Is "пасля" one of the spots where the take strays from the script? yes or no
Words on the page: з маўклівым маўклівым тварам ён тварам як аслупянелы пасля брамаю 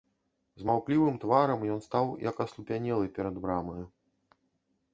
yes